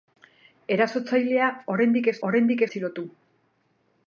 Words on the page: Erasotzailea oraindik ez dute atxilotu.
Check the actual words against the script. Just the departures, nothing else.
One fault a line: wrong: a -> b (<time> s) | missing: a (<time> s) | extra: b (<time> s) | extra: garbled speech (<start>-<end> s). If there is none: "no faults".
wrong: dute -> oraindik (2.3 s)